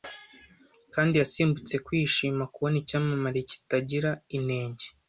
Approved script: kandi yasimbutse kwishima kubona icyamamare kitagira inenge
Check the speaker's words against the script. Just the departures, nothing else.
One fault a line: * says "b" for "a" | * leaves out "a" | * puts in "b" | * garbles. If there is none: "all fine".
all fine